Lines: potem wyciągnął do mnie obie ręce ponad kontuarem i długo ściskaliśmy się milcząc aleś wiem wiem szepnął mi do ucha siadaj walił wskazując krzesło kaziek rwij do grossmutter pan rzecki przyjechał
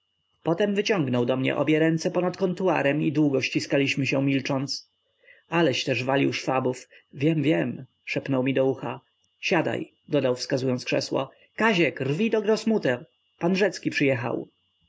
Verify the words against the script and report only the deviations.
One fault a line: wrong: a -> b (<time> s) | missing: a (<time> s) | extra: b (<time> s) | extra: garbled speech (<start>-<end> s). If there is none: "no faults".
extra: też walił szwabów (5.8 s)
wrong: walił -> dodał (10.1 s)